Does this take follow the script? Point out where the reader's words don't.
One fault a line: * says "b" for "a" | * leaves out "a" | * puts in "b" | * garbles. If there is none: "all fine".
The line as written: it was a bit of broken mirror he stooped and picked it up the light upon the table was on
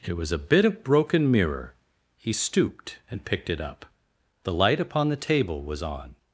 all fine